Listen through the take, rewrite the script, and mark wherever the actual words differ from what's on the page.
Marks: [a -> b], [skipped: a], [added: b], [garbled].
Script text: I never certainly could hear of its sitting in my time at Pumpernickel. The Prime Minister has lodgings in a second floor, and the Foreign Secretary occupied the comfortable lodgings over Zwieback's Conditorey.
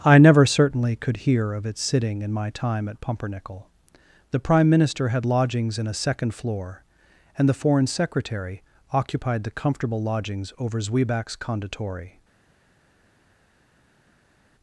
I never certainly could hear of its sitting in my time at Pumpernickel. The Prime Minister [has -> had] lodgings in a second floor, and the Foreign Secretary occupied the comfortable lodgings over Zwieback's Conditorey.